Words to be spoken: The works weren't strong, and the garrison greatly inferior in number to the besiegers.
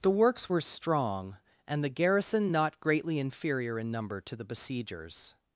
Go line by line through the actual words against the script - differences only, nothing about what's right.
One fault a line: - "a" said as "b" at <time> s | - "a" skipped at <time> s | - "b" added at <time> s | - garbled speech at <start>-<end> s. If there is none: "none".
- "weren't" said as "were" at 0.5 s
- "not" added at 2.5 s